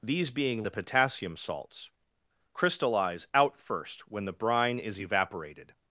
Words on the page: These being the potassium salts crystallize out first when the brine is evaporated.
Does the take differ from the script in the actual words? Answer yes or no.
no